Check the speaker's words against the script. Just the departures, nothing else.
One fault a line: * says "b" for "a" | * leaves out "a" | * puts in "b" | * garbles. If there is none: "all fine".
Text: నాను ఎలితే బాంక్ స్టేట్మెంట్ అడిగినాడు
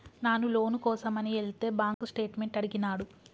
* puts in "లోను కోసమని"